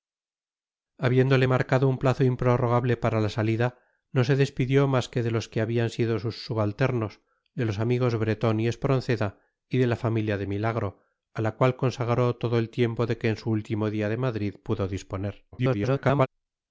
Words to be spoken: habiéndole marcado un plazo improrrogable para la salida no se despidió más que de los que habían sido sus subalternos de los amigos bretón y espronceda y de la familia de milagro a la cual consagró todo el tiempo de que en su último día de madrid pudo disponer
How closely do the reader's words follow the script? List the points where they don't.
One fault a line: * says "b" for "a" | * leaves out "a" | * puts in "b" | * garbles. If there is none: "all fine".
* garbles